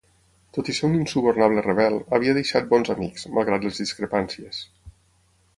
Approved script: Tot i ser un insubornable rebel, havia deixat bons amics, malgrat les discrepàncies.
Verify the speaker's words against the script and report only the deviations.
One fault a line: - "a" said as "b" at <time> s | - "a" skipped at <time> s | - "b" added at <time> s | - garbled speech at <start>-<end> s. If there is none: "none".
none